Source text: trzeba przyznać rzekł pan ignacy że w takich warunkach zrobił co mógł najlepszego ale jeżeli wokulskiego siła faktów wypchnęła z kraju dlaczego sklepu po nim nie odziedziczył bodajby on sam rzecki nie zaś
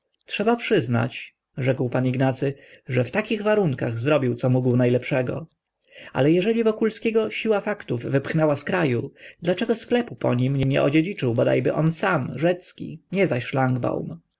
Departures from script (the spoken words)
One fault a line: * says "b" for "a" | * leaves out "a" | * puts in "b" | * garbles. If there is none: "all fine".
all fine